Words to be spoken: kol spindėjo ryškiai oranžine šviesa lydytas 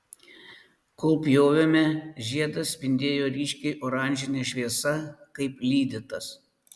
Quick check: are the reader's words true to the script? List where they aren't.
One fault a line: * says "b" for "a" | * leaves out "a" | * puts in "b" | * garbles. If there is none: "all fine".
* puts in "pjovėme žiedas"
* puts in "kaip"